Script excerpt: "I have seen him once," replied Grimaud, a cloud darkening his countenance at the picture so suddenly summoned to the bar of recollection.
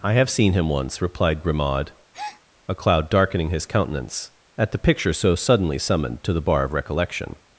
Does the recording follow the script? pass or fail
pass